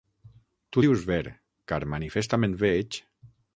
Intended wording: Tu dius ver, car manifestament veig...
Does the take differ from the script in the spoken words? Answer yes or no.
no